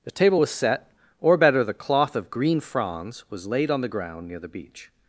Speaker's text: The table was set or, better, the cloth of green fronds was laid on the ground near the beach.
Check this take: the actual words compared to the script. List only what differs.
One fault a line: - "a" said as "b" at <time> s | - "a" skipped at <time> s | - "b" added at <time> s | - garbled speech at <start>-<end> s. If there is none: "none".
none